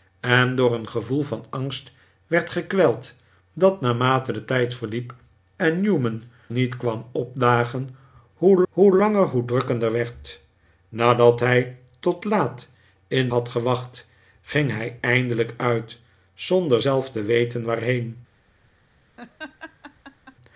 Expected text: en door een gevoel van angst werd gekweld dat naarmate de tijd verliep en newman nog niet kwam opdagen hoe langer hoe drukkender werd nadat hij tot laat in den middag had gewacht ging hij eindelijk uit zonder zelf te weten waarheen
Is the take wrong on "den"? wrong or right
wrong